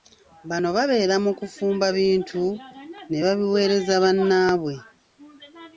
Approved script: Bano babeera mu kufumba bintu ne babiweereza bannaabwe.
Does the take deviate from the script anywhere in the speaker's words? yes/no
no